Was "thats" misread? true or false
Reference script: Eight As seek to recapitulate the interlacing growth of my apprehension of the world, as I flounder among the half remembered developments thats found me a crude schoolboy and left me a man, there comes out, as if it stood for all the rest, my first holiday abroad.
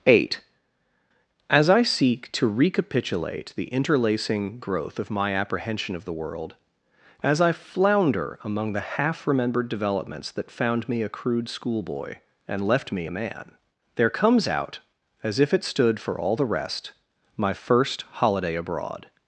true